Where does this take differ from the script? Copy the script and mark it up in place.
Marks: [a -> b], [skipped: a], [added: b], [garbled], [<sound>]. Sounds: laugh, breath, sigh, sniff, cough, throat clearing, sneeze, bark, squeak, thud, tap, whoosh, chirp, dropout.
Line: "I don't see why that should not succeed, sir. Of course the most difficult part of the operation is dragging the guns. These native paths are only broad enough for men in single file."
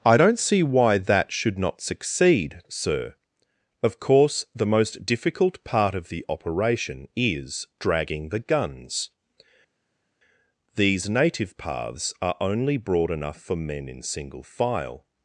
"I don't see why that should not succeed, sir. Of course the most difficult part of the operation is dragging the guns. These native paths are only broad enough for men in single file."